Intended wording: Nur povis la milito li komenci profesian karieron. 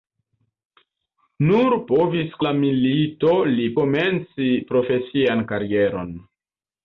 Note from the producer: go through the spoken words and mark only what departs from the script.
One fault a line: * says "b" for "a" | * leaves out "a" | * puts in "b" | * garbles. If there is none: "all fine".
all fine